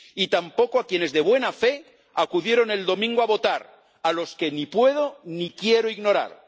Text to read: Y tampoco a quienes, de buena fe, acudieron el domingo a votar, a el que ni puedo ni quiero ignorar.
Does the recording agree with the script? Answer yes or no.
no